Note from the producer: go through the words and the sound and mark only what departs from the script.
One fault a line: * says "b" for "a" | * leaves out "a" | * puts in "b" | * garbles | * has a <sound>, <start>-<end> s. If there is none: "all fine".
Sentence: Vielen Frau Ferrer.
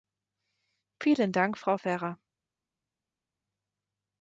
* puts in "Dank"